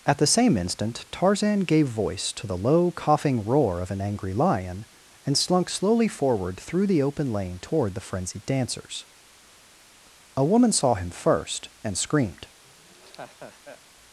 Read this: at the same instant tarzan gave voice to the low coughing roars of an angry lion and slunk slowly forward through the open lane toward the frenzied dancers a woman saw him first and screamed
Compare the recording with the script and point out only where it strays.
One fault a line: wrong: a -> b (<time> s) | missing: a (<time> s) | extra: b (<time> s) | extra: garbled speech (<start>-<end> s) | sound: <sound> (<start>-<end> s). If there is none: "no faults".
wrong: roars -> roar (3.5 s)
sound: laugh (12.6-13.8 s)